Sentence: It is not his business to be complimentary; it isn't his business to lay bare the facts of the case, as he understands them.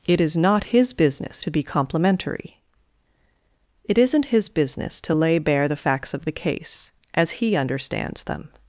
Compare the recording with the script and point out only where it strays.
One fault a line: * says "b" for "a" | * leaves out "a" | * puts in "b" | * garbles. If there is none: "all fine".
all fine